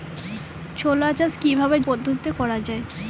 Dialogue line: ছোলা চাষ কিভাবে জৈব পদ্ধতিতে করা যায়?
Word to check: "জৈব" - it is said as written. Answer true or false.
false